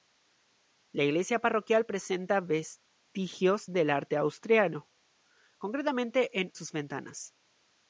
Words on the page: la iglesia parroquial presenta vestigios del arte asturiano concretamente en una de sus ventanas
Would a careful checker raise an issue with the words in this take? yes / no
yes